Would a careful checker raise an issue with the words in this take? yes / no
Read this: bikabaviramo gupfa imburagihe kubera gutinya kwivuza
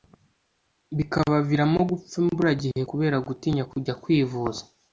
yes